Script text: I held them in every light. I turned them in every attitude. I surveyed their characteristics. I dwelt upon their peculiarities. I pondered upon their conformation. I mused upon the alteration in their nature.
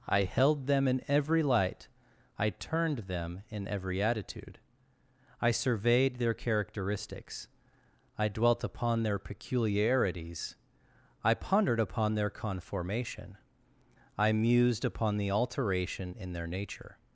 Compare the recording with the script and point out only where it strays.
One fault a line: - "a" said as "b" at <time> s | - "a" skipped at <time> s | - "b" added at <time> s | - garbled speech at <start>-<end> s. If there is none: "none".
none